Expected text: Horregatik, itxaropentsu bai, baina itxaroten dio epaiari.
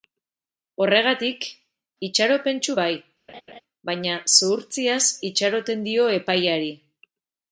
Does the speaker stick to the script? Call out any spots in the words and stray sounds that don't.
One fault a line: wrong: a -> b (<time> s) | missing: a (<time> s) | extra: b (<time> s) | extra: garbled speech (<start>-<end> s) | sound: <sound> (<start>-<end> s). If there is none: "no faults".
sound: laugh (3.3-3.6 s)
extra: zuhurtziaz (4.4 s)